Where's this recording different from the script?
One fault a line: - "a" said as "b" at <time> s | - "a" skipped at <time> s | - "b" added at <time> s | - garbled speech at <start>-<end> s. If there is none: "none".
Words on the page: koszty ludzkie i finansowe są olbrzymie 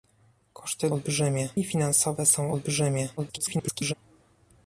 - "ludzkie" said as "olbrzymie" at 0.9 s
- garbled speech at 3.2-3.9 s